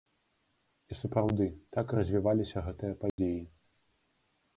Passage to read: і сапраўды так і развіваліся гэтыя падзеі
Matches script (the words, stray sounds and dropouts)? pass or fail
fail